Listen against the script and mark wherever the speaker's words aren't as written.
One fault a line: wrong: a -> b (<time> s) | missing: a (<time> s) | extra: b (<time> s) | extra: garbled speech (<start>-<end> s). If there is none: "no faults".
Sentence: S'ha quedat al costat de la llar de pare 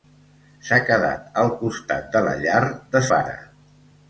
no faults